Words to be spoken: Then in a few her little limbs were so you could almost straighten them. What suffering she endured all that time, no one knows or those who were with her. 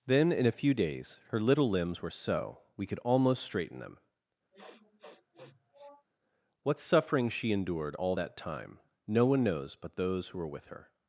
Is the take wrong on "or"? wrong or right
wrong